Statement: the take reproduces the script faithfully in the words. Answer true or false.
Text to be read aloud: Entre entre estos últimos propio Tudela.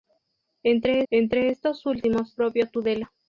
true